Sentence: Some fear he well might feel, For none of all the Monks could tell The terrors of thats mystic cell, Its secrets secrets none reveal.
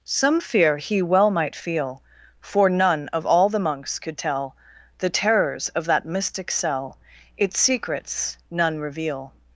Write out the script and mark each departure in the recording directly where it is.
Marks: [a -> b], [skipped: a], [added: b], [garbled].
Some fear he well might feel, For none of all the Monks could tell The terrors of [thats -> that] mystic cell, Its secrets [skipped: secrets] none reveal.